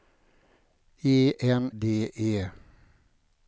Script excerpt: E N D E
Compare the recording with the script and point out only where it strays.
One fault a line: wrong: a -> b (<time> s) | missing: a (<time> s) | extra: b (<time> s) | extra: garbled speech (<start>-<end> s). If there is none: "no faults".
no faults